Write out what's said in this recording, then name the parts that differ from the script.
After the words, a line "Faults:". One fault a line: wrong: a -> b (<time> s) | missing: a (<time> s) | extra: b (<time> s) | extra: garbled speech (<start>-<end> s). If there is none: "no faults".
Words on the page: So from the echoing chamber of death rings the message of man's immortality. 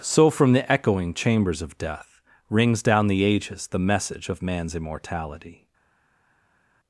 So from the echoing chambers of death rings down the ages the message of man's immortality.
Faults:
wrong: chamber -> chambers (1.1 s)
extra: down the ages (2.8 s)